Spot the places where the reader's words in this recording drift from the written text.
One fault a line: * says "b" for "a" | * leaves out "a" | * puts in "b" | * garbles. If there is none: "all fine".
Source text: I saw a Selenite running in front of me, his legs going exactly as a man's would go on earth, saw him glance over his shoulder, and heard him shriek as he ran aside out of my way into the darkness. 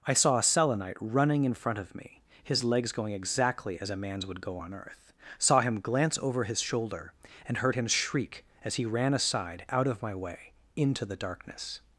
all fine